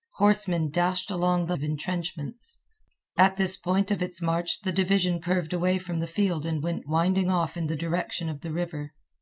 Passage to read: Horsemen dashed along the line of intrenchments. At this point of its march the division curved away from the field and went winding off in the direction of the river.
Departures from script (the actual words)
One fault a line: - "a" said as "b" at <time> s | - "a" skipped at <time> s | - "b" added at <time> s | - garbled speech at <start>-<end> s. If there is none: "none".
- "line" skipped at 1.6 s